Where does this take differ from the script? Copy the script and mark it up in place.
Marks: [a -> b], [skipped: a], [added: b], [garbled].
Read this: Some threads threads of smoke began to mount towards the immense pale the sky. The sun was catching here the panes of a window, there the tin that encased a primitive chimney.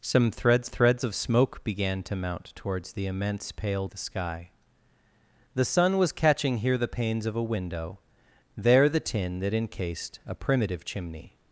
Some threads threads of smoke began to mount towards the immense pale the sky. The sun was catching here the panes of a window, there the tin that encased a primitive chimney.